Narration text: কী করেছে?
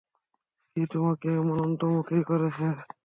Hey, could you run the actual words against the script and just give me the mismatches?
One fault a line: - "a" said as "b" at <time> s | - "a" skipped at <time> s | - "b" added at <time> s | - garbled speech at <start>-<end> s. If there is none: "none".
- "তোমাকে এমন অন্তর্মুখী" added at 0.9 s